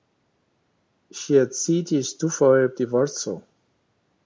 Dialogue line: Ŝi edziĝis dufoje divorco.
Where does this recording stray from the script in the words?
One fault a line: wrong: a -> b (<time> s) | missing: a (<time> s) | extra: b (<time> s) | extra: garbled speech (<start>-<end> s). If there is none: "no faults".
no faults